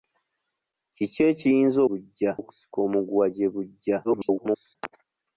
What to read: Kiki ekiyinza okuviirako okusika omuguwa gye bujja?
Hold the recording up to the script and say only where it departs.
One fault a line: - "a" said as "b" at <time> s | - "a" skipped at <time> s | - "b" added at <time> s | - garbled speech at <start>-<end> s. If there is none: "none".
- "okuviirako" said as "bujja" at 1.9 s
- garbled speech at 4.0-4.8 s